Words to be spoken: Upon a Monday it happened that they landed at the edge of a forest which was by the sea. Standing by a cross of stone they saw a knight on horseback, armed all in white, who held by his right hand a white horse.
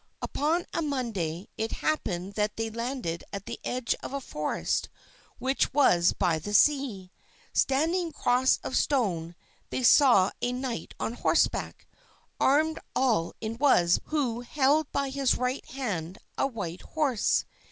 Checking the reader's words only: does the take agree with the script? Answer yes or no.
no